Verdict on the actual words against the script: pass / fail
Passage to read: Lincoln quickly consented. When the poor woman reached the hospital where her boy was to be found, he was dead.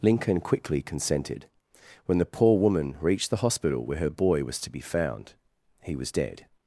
pass